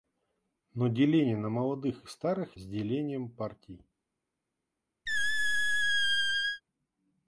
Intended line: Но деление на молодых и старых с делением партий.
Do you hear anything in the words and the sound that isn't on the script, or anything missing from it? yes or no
yes